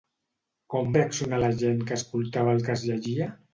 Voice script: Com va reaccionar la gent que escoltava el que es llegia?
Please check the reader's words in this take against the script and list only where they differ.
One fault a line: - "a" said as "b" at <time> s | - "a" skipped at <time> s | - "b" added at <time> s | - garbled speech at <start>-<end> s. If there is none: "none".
- "va" skipped at 0.9 s